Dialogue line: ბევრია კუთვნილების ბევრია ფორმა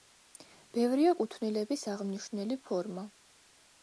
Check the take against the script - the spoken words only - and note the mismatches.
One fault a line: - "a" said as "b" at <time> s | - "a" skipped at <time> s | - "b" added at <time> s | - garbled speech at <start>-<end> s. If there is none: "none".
- "ბევრია" said as "აღმნიშვნელი" at 1.9 s